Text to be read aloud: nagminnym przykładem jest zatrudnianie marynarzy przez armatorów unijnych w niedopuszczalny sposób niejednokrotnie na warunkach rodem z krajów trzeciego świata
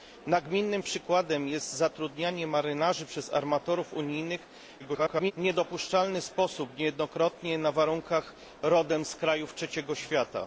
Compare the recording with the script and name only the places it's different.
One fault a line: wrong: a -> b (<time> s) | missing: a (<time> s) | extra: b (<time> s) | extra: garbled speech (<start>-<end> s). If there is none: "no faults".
extra: garbled speech (4.8-5.3 s)